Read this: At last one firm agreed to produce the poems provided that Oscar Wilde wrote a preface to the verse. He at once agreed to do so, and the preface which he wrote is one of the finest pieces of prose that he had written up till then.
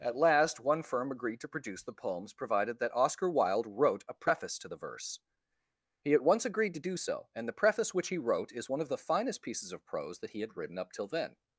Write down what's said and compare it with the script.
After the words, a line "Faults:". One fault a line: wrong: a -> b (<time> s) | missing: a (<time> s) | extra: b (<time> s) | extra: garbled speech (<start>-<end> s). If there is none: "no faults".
At last one firm agreed to produce the poems provided that Oscar Wilde wrote a preface to the verse. He at once agreed to do so, and the preface which he wrote is one of the finest pieces of prose that he had written up till then.
Faults:
no faults